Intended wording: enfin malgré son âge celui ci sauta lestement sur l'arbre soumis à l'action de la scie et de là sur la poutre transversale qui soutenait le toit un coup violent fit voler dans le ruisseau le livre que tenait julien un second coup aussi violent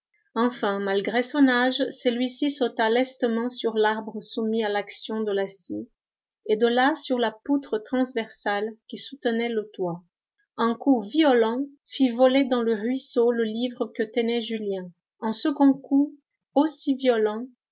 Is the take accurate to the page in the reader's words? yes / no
yes